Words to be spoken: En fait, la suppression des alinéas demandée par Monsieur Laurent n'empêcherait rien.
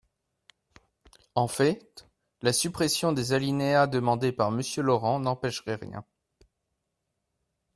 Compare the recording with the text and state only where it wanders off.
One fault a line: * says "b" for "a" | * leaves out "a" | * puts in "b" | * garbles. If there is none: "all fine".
all fine